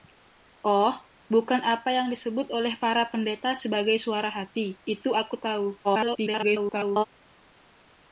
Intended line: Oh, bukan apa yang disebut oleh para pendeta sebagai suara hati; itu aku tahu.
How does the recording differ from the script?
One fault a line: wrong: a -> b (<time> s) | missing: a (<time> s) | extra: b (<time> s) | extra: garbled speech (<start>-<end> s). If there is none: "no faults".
extra: garbled speech (5.8-7.0 s)